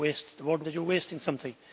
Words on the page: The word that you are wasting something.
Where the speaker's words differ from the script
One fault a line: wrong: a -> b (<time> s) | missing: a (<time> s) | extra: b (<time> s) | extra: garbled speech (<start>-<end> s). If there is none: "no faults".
no faults